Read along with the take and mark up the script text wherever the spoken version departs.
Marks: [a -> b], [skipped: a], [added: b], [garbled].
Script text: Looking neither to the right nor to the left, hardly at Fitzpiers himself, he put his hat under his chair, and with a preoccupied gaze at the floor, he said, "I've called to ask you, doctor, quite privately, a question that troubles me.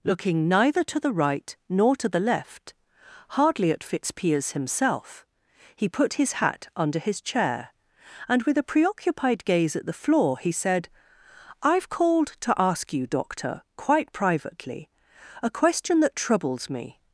Looking neither to the right nor to the left, hardly at Fitzpiers himself, he put his hat under his chair, and with a preoccupied gaze at the floor, he said, "I've called to ask you, doctor, quite privately, a question that troubles me.